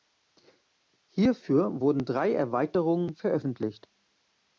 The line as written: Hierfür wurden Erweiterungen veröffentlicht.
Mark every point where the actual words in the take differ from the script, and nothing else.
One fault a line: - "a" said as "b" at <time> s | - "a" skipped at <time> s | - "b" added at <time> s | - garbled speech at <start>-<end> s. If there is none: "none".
- "drei" added at 2.1 s